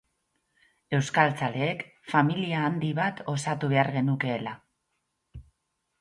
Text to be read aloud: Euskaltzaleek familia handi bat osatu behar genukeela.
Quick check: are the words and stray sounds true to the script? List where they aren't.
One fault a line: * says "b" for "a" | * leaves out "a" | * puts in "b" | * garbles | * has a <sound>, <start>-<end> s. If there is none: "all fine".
all fine